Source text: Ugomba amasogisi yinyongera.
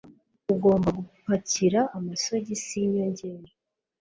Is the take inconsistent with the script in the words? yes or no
yes